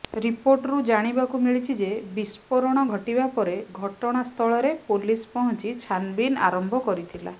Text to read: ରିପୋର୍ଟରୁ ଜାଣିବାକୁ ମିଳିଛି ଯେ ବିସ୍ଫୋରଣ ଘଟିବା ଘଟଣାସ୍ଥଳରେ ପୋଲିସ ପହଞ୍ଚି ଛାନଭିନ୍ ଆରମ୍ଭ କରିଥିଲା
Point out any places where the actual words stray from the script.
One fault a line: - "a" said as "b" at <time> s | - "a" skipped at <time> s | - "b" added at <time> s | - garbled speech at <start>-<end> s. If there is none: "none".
- "ପରେ" added at 3.3 s